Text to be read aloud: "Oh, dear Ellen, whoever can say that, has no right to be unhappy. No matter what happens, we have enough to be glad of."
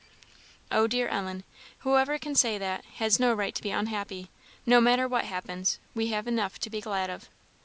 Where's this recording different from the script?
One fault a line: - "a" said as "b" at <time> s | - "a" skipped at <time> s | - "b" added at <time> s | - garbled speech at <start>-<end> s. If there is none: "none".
none